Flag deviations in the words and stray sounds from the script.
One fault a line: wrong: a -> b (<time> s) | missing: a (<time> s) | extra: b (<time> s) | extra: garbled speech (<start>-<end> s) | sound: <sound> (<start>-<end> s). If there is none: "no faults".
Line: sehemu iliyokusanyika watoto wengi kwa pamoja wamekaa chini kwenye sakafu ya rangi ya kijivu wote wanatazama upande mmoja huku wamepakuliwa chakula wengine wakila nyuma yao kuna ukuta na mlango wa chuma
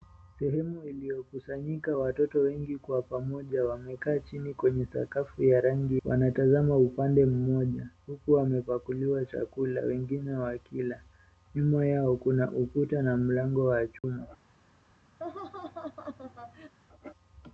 missing: ya kijivu wote (6.0 s)
sound: dropout (14.0-14.0 s)
sound: laugh (15.2-16.7 s)